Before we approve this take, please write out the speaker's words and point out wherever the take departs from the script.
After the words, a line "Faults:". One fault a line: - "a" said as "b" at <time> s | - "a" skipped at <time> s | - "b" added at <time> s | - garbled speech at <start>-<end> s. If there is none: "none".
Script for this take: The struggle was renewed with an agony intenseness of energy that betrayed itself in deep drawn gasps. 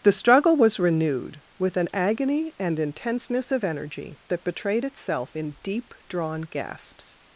The struggle was renewed with an agony and intenseness of energy that betrayed itself in deep drawn gasps.
Faults:
- "and" added at 2.6 s